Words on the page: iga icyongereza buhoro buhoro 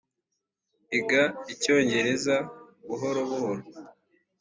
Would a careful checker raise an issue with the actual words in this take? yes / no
no